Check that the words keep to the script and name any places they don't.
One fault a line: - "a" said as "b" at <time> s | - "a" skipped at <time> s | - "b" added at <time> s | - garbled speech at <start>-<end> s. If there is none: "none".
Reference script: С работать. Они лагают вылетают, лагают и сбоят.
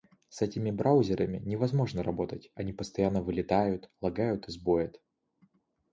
- "этими браузерами невозможно" added at 0.4 s
- "лагают" said as "постоянно" at 2.7 s